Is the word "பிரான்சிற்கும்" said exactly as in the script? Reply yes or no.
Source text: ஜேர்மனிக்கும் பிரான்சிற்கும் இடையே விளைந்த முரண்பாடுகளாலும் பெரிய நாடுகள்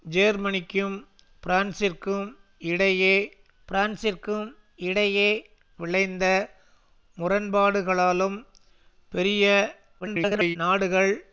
yes